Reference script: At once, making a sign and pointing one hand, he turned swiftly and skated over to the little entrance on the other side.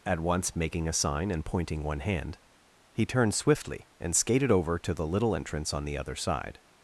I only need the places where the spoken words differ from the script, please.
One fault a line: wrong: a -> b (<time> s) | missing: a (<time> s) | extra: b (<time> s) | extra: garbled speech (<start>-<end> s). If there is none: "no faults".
no faults